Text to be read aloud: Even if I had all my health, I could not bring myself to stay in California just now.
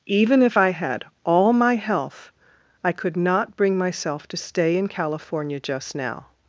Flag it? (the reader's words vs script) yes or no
no